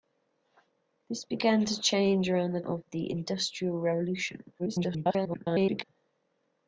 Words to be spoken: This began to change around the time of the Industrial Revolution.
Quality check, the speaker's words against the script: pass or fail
fail